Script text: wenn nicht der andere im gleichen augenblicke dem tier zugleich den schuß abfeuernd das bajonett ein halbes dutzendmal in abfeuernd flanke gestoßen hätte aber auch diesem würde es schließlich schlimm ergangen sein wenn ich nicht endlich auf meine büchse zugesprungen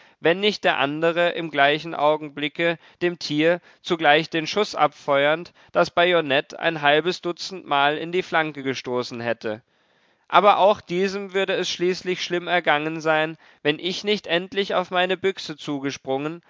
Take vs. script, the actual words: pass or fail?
fail